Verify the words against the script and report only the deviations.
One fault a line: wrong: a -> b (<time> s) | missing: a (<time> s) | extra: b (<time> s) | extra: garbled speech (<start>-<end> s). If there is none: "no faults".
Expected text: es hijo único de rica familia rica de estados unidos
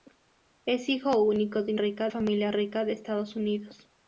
no faults